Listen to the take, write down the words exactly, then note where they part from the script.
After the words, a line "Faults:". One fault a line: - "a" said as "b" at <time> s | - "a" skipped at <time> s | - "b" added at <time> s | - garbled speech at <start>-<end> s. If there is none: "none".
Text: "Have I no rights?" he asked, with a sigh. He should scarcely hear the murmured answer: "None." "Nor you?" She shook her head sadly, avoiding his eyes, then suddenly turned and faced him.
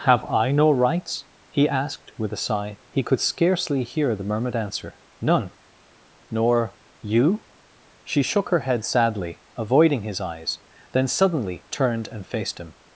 "Have I no rights?" he asked, with a sigh. He could scarcely hear the murmured answer: "None." "Nor you?" She shook her head sadly, avoiding his eyes, then suddenly turned and faced him.
Faults:
- "should" said as "could" at 3.0 s